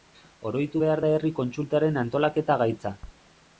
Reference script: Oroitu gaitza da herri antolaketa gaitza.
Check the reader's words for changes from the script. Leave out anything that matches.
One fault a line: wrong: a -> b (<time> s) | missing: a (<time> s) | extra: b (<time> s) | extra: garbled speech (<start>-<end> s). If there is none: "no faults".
wrong: gaitza -> behar (0.8 s)
extra: kontsultaren (1.4 s)